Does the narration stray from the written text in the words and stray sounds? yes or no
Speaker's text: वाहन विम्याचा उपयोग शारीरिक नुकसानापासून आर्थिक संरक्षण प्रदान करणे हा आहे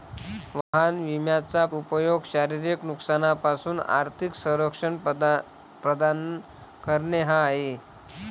yes